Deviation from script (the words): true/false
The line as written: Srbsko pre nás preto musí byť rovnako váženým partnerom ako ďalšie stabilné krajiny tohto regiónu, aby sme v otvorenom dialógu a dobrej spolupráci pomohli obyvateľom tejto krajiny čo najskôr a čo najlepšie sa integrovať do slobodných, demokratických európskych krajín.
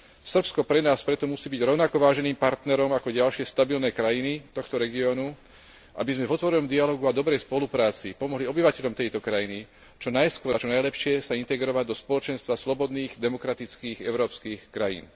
true